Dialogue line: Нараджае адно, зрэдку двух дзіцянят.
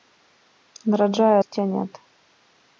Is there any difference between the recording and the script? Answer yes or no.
yes